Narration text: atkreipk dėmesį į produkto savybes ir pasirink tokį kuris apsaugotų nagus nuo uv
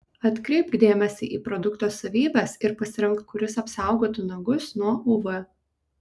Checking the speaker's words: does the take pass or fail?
fail